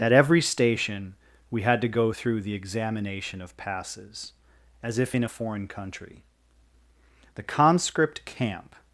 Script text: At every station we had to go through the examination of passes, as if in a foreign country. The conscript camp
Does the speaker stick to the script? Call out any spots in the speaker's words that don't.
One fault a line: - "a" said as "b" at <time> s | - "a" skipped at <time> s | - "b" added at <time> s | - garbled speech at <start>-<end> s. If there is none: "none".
none